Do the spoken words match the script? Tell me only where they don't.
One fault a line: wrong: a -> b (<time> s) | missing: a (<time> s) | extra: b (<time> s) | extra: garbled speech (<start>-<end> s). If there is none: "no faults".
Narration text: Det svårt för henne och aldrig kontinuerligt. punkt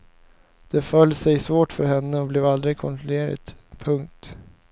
extra: föll sig (0.8 s)
extra: blev (2.3 s)